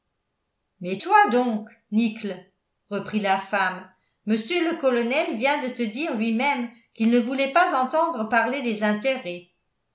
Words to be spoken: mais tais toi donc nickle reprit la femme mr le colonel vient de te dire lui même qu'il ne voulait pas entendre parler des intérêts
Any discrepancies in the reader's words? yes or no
yes